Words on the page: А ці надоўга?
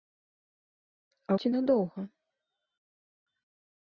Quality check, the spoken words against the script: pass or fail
pass